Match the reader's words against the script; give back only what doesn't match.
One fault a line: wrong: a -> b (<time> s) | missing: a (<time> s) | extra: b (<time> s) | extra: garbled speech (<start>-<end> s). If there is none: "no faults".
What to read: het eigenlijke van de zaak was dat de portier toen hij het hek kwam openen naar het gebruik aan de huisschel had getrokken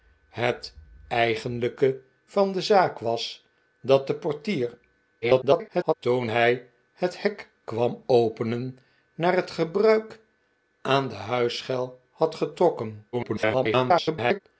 extra: garbled speech (5.2-5.9 s)
extra: garbled speech (13.1-14.4 s)